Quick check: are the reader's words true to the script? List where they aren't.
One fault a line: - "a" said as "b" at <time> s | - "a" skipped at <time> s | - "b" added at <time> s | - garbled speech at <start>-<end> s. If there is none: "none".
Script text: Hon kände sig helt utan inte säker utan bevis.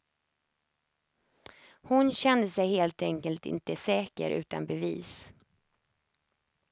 - "utan" said as "enkelt" at 3.0 s